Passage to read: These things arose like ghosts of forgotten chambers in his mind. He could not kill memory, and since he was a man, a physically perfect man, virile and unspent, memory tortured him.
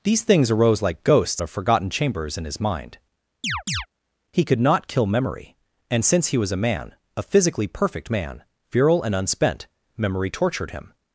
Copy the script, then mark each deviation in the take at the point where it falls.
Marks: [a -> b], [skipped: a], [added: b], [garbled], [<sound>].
These things arose like ghosts of forgotten chambers in his mind. [chirp] He could not kill memory, and since he was a man, a physically perfect man, virile and unspent, memory tortured him.